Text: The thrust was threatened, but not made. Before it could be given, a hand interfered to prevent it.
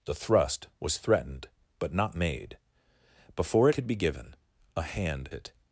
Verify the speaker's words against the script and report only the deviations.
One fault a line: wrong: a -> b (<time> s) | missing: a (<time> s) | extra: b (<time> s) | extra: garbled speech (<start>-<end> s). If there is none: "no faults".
missing: it (3.7 s)
missing: interfered to prevent (5.3 s)